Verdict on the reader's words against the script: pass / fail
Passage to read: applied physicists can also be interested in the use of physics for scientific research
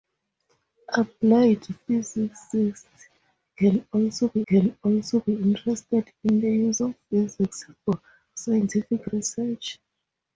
fail